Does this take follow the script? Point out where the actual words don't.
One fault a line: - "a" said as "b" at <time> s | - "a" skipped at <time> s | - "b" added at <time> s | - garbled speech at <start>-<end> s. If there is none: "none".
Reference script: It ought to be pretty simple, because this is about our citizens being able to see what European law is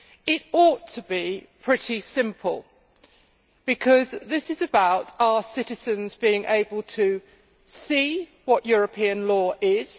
none